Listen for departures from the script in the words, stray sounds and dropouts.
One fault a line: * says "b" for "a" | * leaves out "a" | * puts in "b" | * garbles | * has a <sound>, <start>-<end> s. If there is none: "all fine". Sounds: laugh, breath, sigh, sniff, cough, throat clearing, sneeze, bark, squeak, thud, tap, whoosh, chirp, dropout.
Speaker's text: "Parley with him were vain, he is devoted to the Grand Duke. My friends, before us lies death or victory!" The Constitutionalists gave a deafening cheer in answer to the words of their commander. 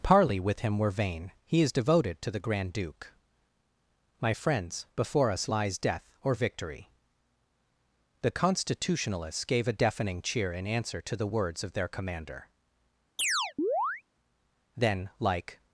* has a chirp, 13.2-14.0 s
* puts in "Then like"